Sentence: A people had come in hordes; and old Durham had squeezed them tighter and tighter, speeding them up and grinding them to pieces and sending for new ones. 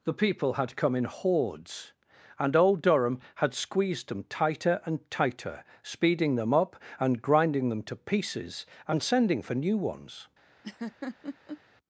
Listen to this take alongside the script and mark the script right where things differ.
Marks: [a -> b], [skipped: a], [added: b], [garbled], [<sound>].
[A -> The] people had come in hordes; and old Durham had squeezed them tighter and tighter, speeding them up and grinding them to pieces and sending for new ones. [laugh]